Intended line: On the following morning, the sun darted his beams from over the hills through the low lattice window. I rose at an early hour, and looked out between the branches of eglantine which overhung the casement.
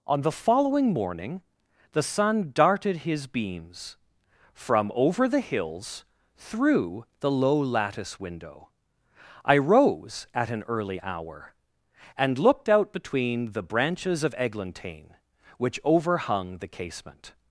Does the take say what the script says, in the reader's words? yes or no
yes